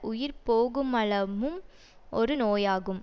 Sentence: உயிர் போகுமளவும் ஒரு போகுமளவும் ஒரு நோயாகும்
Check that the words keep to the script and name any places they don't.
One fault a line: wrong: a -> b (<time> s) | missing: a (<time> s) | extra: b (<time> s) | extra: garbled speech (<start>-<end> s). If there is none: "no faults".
missing: போகுமளவும் ஒரு (2.4 s)